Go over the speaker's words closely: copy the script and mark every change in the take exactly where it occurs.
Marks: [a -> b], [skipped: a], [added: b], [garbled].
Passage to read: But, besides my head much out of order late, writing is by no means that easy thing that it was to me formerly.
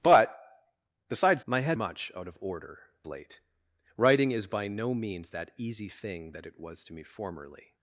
But, besides my head much out of order late, writing is by no means that easy thing that it was to me formerly.